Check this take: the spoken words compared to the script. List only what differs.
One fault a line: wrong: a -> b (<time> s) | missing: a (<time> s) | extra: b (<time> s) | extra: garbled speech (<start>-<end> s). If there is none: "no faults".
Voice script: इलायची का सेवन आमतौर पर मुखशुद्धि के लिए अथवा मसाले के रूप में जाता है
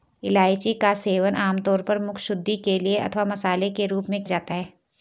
no faults